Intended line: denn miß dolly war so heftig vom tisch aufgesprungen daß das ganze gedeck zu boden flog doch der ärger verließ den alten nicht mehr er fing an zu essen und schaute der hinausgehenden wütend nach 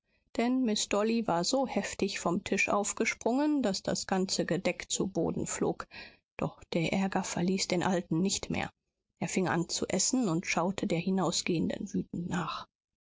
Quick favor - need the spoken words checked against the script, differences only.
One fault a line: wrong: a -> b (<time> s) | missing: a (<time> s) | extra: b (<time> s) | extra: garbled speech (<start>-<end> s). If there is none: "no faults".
no faults